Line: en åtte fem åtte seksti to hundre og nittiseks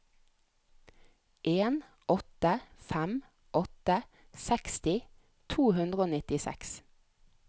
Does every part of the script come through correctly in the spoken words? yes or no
yes